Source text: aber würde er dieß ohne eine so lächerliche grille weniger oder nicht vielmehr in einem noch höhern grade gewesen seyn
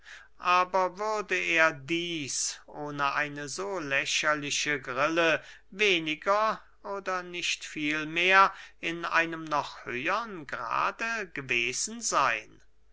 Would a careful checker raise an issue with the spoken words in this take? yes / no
no